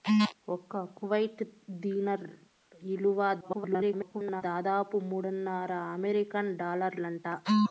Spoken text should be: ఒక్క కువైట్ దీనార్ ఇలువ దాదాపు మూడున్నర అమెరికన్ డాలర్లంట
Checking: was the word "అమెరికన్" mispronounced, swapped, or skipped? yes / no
no